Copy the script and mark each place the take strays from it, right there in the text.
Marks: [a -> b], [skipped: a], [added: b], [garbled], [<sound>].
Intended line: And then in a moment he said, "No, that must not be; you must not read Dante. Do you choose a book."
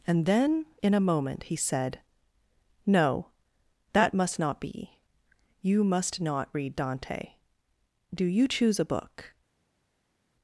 And then in a moment he said, "No, that must not be; you must not read Dante. Do you choose a book."